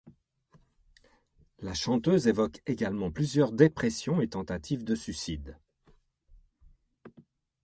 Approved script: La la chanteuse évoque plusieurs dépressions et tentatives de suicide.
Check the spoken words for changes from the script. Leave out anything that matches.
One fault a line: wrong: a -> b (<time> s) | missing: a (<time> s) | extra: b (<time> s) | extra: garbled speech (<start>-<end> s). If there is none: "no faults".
missing: la (1.8 s)
extra: également (2.6 s)